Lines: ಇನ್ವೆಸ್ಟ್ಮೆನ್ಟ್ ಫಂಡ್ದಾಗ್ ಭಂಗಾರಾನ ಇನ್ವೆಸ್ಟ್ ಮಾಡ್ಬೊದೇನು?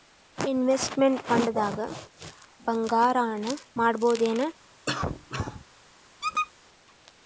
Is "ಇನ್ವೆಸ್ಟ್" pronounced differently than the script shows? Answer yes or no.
yes